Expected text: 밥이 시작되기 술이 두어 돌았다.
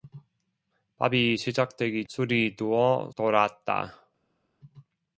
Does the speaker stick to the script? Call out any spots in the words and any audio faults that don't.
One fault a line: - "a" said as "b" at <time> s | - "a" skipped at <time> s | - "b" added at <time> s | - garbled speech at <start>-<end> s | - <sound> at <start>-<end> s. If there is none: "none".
none